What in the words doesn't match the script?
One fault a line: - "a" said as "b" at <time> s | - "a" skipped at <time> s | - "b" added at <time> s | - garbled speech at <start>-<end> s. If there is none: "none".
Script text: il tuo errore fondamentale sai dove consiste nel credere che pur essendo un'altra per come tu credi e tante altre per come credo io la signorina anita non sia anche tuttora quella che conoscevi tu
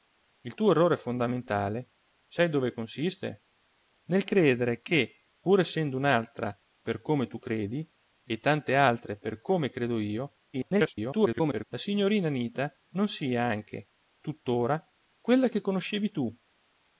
- garbled speech at 10.5-11.6 s